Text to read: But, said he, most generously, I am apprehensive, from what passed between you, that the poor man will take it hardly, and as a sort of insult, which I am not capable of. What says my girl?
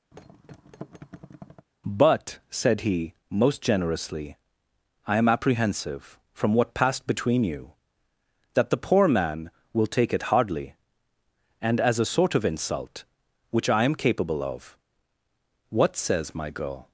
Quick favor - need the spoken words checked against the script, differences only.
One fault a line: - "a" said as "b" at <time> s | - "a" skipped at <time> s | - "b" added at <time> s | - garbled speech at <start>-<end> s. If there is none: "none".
- "not" skipped at 13.9 s